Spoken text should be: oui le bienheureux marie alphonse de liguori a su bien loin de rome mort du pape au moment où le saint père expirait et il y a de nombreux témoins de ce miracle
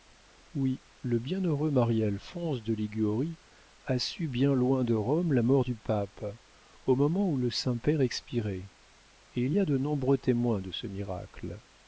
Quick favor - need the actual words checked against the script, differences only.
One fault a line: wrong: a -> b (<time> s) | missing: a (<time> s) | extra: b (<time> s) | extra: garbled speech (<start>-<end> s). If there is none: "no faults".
extra: la (5.3 s)